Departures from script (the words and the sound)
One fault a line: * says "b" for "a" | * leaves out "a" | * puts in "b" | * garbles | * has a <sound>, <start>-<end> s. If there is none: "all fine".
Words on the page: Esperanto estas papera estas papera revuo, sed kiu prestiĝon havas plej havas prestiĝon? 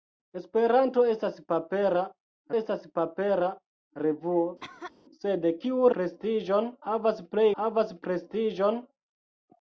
* has a cough, 4.6-4.9 s